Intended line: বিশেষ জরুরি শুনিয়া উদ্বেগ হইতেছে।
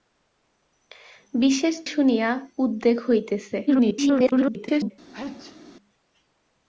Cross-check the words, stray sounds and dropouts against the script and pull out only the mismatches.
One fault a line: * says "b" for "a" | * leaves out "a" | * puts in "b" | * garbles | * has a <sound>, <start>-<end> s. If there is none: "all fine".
* leaves out "জরুরি"
* garbles
* has a sneeze, 5.1-5.6 s